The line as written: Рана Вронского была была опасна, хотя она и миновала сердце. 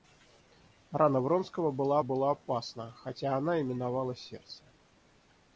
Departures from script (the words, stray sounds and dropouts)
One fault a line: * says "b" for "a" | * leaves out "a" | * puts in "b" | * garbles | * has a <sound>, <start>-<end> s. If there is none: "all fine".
all fine